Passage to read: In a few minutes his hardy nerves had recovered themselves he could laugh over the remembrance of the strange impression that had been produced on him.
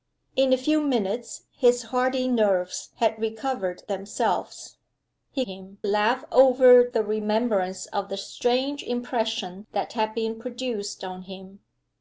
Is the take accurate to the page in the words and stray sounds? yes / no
no